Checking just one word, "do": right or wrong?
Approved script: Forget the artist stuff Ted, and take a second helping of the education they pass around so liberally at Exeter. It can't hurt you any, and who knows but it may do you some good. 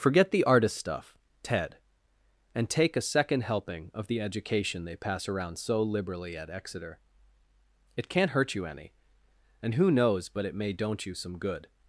wrong